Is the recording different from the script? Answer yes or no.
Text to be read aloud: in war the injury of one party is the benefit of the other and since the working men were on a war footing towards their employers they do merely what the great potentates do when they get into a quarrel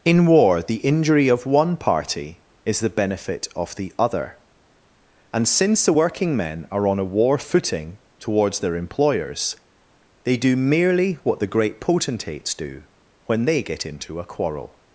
yes